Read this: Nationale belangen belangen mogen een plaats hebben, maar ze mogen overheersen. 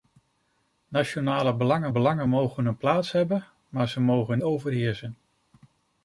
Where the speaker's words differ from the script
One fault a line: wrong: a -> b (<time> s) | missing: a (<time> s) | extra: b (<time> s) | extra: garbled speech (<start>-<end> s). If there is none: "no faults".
no faults